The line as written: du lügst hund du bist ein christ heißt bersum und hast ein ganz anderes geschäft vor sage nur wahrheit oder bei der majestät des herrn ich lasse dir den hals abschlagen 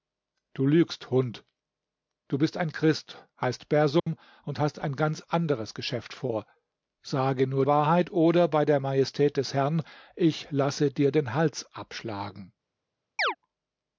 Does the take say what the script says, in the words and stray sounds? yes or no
no